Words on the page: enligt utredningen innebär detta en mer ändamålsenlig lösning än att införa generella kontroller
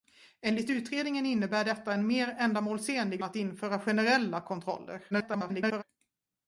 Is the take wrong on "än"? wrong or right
wrong